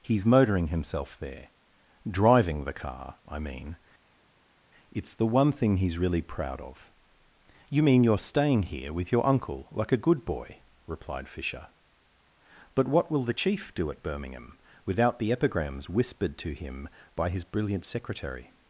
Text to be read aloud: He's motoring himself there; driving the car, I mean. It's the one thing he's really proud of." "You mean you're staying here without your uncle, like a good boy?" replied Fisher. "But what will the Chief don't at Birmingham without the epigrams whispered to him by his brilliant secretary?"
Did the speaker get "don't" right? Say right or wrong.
wrong